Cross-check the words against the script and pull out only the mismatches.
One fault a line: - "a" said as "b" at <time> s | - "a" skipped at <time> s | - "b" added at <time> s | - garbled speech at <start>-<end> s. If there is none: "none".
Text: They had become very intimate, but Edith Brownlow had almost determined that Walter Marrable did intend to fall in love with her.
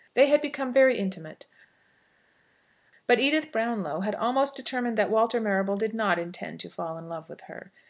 - "not" added at 5.9 s